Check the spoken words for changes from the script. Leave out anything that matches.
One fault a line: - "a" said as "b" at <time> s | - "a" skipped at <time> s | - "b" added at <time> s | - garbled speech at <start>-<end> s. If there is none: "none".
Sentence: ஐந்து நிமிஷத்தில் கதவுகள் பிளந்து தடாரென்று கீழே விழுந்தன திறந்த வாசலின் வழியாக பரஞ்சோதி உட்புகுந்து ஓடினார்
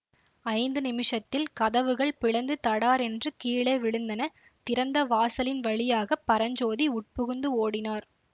none